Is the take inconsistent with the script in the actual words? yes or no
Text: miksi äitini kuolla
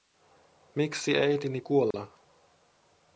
no